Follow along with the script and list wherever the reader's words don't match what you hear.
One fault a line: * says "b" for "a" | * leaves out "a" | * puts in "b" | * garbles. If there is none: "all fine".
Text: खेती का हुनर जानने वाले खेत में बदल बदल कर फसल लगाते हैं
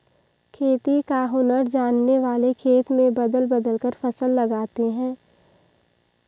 all fine